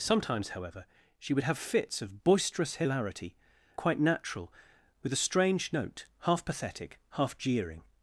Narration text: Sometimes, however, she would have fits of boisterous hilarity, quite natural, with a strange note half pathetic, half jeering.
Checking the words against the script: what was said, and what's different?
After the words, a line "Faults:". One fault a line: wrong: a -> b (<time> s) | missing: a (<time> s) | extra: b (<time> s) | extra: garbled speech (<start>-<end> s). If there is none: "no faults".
Sometimes, however, she would have fits of boisterous hilarity, quite natural, with a strange note half pathetic, half jeering.
Faults:
no faults